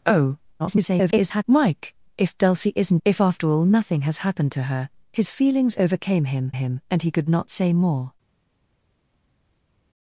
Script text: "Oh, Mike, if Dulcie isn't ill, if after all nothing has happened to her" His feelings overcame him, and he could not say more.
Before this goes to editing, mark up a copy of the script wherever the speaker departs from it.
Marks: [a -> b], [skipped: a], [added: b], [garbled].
"Oh, [garbled] Mike, if Dulcie isn't [skipped: ill,] if after all nothing has happened to her" His feelings overcame him, [added: him] and he could not say more.